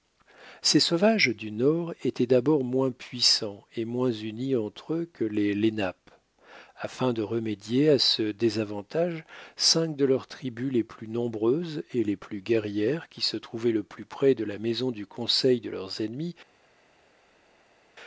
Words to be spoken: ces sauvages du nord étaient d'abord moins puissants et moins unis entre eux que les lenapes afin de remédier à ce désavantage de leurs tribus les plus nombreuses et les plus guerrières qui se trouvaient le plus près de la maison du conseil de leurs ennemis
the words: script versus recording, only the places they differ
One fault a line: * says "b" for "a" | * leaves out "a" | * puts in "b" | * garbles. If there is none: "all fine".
* puts in "cinq"